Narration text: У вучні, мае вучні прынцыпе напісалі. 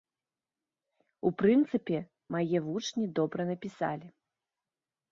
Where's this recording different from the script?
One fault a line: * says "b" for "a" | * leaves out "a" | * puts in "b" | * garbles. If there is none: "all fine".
* says "прынцыпе" for "вучні"
* says "добра" for "прынцыпе"